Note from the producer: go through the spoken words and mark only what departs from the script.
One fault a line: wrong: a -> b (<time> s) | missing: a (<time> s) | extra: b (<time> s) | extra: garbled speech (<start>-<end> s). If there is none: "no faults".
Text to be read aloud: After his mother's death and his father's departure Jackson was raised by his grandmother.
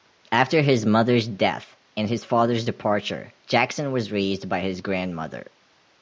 no faults